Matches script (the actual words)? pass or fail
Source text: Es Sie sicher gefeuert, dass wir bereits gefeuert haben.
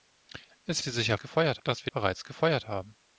pass